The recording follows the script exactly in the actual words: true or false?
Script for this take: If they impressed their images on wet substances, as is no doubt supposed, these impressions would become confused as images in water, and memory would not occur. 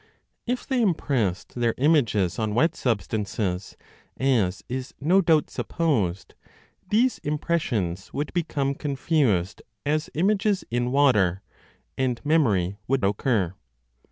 false